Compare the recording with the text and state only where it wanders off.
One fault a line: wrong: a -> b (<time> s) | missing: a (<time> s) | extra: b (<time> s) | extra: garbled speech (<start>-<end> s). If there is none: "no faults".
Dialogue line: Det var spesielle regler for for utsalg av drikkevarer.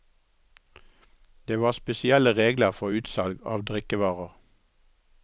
missing: for (2.9 s)